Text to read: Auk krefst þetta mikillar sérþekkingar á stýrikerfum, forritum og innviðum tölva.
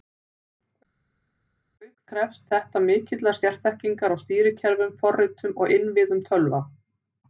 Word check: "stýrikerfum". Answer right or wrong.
right